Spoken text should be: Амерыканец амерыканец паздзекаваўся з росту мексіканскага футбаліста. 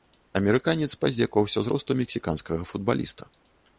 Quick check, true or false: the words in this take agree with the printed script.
false